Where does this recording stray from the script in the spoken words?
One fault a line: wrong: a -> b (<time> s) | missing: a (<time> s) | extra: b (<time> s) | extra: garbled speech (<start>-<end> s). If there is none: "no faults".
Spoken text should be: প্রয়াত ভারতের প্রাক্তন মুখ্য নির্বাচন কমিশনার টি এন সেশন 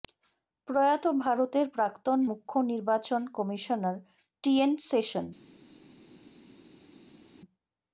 no faults